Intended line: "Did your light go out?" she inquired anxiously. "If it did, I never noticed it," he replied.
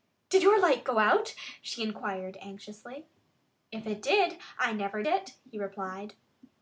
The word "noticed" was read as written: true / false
false